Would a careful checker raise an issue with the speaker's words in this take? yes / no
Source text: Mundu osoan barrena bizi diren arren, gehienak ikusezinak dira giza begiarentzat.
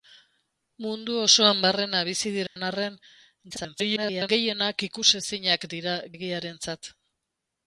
yes